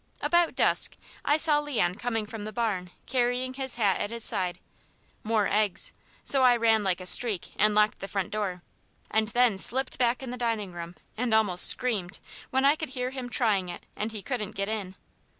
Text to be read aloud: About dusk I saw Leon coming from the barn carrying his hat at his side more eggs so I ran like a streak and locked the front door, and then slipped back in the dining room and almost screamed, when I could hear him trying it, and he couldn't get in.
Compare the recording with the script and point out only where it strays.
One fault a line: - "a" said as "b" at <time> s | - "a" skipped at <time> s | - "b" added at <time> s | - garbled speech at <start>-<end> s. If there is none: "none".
none